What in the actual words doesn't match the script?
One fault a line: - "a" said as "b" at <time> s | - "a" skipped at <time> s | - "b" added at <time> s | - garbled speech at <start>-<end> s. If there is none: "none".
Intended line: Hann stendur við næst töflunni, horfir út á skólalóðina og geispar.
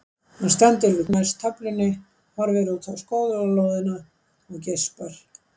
none